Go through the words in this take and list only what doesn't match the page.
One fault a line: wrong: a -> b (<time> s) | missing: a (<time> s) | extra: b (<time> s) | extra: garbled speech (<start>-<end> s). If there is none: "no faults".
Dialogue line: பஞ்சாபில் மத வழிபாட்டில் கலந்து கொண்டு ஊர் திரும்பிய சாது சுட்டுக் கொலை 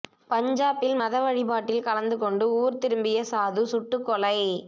no faults